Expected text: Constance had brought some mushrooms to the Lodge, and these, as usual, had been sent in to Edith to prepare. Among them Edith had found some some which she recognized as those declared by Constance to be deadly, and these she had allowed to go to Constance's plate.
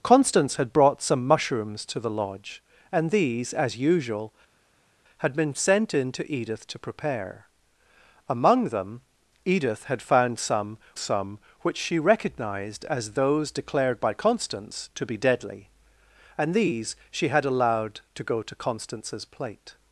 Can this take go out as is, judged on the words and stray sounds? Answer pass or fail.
pass